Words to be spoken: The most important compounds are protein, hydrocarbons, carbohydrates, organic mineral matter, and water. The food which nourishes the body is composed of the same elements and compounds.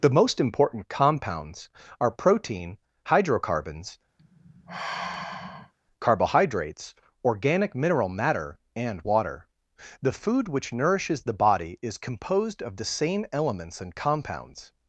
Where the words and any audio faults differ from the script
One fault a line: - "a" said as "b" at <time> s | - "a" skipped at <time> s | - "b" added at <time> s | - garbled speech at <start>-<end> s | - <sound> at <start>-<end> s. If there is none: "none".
- sigh at 4.2-5.7 s